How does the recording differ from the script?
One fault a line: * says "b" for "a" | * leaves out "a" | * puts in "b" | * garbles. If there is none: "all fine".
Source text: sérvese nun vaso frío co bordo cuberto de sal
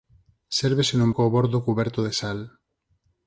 * leaves out "vaso frío"